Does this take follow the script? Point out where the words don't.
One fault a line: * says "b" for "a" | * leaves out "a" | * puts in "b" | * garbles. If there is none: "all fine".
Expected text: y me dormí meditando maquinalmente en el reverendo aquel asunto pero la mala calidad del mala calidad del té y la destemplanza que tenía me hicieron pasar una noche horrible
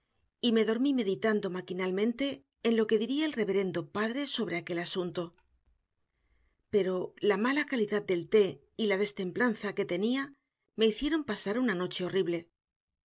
* puts in "lo que diría"
* puts in "padre sobre"
* leaves out "mala calidad del"